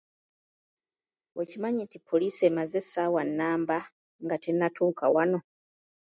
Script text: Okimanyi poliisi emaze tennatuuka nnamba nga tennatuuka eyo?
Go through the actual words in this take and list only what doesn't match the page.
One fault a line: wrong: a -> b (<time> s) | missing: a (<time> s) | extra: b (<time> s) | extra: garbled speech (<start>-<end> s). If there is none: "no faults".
extra: nti (1.9 s)
wrong: tennatuuka -> essaawa (2.8 s)
wrong: eyo -> wano (5.1 s)